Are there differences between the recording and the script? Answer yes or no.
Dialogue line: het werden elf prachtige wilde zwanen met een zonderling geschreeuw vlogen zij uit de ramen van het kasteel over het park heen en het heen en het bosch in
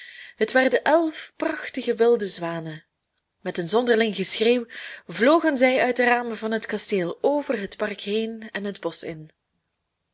yes